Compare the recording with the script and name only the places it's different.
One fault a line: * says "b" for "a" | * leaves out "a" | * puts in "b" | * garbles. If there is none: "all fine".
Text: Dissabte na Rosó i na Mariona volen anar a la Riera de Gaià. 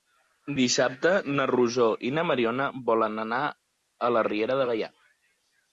all fine